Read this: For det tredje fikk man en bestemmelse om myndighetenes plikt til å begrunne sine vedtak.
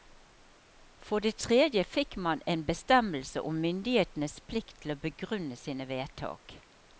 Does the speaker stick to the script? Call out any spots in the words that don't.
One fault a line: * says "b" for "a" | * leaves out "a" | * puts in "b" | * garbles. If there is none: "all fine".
all fine